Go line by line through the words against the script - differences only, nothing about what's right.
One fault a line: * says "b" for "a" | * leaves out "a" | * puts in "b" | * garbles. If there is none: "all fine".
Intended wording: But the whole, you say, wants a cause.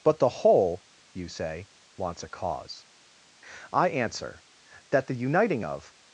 * puts in "I answer that the uniting of"